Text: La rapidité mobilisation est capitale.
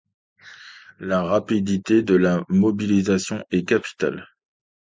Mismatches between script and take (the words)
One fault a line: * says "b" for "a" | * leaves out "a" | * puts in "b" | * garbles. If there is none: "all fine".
* puts in "de la"